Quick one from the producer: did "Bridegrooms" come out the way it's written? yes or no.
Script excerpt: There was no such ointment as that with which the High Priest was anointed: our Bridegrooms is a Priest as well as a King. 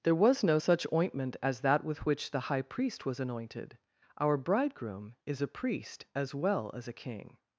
no